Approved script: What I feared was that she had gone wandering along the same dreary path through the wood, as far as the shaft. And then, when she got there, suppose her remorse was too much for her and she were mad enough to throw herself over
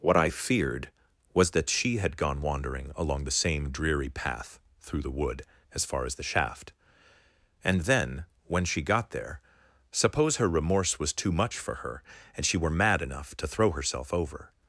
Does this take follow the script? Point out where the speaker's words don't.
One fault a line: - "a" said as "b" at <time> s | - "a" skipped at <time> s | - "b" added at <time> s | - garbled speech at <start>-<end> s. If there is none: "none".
none